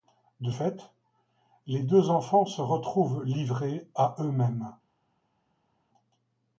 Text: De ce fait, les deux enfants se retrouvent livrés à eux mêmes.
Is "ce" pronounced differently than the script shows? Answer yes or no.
yes